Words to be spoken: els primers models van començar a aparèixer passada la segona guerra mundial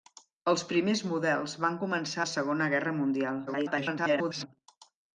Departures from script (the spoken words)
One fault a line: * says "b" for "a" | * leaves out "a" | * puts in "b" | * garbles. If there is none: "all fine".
* leaves out "a aparèixer passada"
* garbles